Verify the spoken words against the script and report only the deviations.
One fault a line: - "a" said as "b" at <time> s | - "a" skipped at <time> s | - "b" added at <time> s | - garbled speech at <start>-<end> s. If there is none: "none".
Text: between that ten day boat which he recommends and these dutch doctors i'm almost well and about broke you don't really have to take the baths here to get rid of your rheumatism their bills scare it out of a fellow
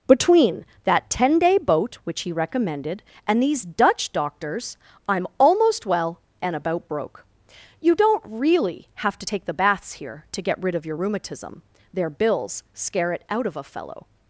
- "recommends" said as "recommended" at 2.3 s